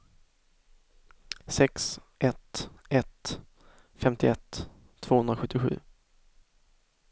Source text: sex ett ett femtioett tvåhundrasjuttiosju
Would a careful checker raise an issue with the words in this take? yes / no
no